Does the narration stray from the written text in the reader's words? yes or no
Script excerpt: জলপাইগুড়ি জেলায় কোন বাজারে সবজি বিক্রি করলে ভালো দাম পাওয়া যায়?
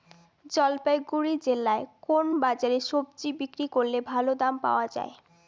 no